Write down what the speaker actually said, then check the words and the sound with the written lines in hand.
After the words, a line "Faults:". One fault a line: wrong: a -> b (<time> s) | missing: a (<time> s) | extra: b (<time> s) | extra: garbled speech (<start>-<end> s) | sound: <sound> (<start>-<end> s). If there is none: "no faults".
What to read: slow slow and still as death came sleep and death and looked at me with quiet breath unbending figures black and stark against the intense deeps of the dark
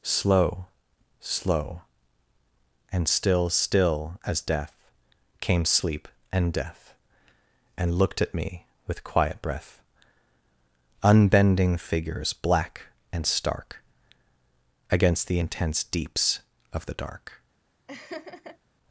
slow slow and still still as death came sleep and death and looked at me with quiet breath unbending figures black and stark against the intense deeps of the dark
Faults:
extra: still (3.5 s)
sound: laugh (17.9-18.6 s)